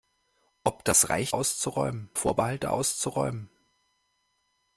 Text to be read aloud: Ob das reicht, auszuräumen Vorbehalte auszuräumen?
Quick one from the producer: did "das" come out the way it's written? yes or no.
yes